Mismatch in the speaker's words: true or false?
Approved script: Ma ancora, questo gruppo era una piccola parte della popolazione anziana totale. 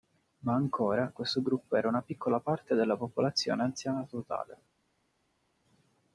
false